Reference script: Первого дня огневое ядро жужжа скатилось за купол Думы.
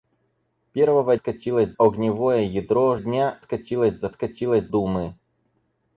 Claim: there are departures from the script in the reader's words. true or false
true